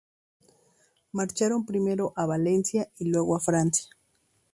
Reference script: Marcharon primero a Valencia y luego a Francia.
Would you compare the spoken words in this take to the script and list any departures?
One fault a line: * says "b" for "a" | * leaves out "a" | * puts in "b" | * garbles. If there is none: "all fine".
all fine